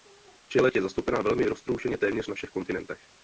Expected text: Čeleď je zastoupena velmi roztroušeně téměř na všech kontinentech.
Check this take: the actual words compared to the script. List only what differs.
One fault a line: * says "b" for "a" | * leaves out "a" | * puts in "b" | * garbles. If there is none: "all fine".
all fine